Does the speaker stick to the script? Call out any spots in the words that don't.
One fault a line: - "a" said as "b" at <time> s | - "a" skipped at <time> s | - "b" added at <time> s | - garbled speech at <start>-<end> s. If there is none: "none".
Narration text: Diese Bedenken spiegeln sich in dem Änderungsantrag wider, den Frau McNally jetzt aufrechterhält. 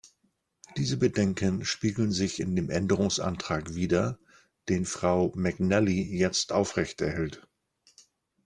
none